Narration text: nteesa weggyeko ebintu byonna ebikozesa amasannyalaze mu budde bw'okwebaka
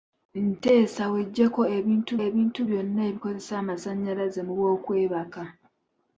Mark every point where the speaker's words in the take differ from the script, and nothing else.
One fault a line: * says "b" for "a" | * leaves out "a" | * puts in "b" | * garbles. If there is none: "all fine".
* puts in "ebintu"
* leaves out "budde"